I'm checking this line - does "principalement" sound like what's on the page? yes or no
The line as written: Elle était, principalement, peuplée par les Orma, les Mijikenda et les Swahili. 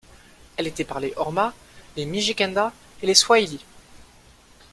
no